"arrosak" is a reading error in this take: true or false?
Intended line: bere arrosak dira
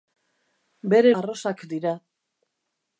false